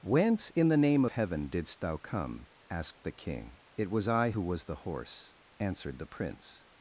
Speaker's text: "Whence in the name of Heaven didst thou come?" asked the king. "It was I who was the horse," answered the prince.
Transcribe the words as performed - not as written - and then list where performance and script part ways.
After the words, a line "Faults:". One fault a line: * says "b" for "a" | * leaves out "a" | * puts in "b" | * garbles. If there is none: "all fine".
"Whence in the name Heaven didst thou come?" asked the king. "It was I who was the horse," answered the prince.
Faults:
* leaves out "of"